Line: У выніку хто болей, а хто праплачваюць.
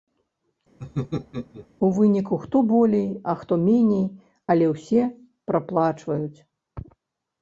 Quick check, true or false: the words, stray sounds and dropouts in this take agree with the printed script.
false